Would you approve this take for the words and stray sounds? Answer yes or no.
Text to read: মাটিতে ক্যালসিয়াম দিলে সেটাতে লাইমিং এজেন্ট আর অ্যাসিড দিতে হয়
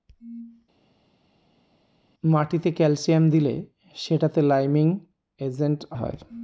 no